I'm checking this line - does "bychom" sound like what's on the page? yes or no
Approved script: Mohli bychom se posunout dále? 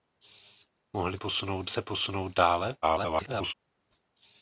no